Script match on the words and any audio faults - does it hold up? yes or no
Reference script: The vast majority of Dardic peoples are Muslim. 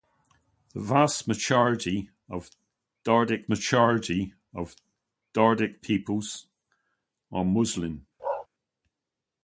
no